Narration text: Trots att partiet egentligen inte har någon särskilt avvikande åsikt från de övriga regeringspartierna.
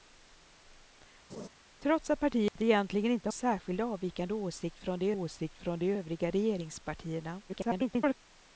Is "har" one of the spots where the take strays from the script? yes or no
yes